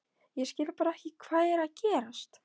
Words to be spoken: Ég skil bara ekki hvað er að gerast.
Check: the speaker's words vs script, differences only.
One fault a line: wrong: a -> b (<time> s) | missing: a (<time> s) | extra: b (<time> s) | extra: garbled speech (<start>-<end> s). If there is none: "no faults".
no faults